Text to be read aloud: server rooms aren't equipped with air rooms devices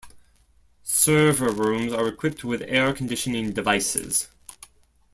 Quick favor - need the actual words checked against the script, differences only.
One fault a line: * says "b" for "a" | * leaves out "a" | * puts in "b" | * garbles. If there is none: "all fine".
* says "are" for "aren't"
* says "conditioning" for "rooms"